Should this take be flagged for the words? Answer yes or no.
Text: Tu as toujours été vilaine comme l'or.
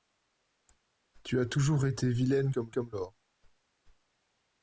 yes